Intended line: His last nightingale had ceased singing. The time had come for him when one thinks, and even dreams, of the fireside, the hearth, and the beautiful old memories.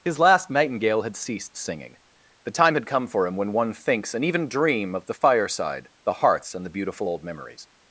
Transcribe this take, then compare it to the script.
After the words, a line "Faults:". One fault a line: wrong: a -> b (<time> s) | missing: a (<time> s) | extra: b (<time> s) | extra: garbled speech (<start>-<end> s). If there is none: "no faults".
His last nightingale had ceased singing. The time had come for him when one thinks, and even dream, of the fireside, the hearths, and the beautiful old memories.
Faults:
wrong: dreams -> dream (4.5 s)
wrong: hearth -> hearths (6.1 s)